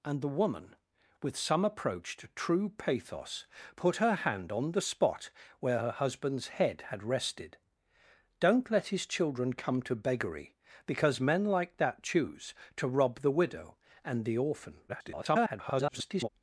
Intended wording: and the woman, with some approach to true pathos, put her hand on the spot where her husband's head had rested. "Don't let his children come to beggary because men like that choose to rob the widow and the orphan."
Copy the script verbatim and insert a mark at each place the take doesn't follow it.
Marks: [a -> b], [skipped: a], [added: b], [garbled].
and the woman, with some approach to true pathos, put her hand on the spot where her husband's head had rested. "Don't let his children come to beggary because men like that choose to rob the widow and the orphan." [garbled]